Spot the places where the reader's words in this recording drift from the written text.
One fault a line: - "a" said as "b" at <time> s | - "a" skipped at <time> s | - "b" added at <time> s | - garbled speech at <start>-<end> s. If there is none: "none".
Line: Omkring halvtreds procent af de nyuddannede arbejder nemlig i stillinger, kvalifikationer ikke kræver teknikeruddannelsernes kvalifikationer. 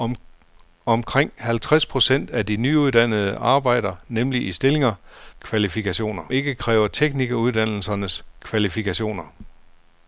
none